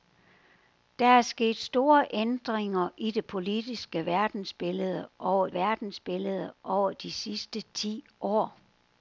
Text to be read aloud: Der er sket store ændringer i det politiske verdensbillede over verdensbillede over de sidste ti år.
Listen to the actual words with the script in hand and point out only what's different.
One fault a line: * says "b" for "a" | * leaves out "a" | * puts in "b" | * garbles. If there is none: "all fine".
all fine